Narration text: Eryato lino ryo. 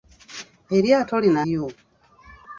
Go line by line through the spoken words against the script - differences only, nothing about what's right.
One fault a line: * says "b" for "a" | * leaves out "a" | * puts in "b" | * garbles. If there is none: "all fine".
all fine